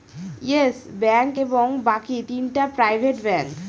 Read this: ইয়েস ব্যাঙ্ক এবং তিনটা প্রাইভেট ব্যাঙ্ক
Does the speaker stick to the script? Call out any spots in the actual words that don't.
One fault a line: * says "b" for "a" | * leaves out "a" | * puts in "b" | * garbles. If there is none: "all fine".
* puts in "বাকি"